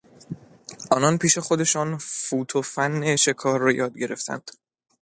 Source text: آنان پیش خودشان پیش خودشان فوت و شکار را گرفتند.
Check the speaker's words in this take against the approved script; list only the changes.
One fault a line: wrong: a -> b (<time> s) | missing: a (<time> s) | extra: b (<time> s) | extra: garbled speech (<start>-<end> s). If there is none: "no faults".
missing: پیش خودشان (2.0 s)
extra: فن (2.6 s)
extra: یاد (3.7 s)